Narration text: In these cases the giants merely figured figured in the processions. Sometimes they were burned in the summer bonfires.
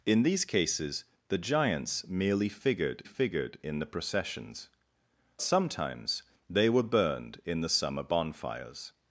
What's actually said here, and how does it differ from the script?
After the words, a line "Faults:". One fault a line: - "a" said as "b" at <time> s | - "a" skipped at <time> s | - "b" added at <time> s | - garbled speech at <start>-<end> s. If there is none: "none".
In these cases the giants merely figured figured in the processions. Sometimes they were burned in the summer bonfires.
Faults:
none